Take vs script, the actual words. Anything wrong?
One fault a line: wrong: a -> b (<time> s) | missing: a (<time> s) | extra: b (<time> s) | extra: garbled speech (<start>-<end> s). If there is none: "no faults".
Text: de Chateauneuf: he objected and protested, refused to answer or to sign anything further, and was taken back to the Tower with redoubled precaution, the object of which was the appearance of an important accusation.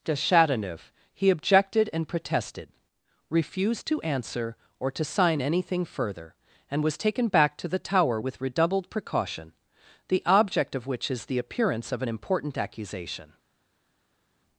wrong: was -> is (11.1 s)